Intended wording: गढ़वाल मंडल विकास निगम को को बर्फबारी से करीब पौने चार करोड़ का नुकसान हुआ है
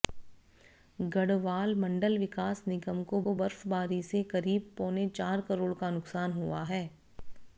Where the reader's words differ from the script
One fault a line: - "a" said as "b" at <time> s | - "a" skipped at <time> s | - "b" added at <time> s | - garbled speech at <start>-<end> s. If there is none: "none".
none